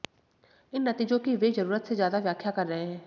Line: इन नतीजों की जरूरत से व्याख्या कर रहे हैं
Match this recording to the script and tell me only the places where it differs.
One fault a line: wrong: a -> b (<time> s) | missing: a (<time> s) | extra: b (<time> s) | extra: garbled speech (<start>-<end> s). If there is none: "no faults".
extra: वे (1.4 s)
extra: ज्यादा (1.9 s)